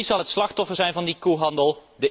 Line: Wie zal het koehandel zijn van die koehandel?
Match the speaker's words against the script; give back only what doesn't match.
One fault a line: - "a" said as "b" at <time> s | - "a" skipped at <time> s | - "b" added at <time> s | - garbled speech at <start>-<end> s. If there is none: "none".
- "koehandel" said as "slachtoffer" at 0.3 s